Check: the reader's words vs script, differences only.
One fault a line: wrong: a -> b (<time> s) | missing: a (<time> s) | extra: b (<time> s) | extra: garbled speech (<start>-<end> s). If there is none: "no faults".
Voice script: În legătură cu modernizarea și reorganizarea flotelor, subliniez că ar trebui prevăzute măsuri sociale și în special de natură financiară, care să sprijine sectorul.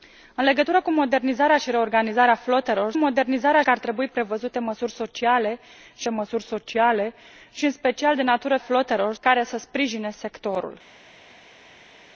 wrong: subliniez -> modernizarea (3.0 s)
extra: măsuri sociale și (6.1 s)
wrong: financiară -> flotelor (8.6 s)